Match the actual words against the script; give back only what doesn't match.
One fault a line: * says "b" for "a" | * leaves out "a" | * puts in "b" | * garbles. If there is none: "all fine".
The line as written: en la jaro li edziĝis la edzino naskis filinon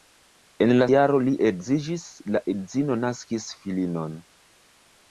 all fine